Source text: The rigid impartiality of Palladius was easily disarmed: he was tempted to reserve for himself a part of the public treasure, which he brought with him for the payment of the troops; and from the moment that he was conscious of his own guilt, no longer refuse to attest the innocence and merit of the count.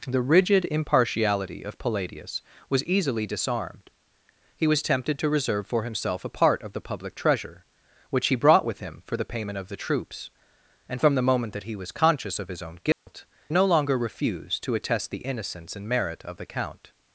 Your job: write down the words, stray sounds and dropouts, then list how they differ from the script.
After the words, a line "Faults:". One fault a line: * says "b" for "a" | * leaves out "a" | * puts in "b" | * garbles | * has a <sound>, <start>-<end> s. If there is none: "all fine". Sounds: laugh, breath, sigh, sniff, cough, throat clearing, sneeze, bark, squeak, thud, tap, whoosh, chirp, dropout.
The rigid impartiality of Palladius was easily disarmed: he was tempted to reserve for himself a part of the public treasure, which he brought with him for the payment of the troops; and from the moment that he was conscious of his own guilt, no longer refuse to attest the innocence and merit of the count.
Faults:
* has a dropout, 12.9-13.1 s